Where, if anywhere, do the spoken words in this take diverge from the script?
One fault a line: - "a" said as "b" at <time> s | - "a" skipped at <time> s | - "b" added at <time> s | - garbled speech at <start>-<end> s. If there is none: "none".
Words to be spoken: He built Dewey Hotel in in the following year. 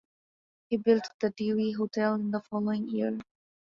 - "the" added at 1.2 s
- "in" skipped at 2.3 s